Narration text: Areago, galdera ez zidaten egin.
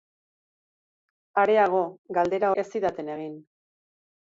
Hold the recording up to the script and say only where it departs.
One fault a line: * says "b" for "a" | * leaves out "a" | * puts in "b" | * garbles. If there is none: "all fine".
all fine